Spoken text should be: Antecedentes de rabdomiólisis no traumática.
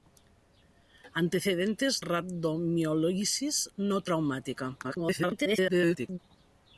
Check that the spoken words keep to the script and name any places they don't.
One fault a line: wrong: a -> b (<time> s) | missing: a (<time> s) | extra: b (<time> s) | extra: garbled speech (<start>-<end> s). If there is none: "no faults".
missing: de (2.0 s)
extra: garbled speech (4.8-6.2 s)